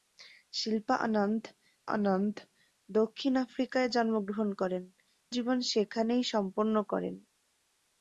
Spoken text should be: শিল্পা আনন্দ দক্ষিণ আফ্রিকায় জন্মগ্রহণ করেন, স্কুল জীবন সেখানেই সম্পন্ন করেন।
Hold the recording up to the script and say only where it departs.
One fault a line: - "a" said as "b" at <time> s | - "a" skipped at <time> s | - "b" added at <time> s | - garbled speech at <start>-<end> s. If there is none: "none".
- "আনন্দ" added at 1.9 s
- "স্কুল" skipped at 4.8 s